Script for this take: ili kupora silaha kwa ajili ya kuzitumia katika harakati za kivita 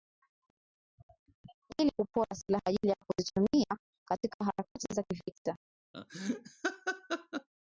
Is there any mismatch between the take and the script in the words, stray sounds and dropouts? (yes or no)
yes